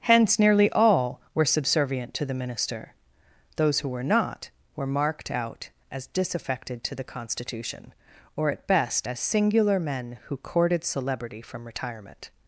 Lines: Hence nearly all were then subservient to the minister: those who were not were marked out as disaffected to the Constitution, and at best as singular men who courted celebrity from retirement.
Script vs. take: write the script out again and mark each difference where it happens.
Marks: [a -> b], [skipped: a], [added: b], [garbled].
Hence nearly all were [skipped: then] subservient to the minister: those who were not were marked out as disaffected to the Constitution, [and -> or] at best as singular men who courted celebrity from retirement.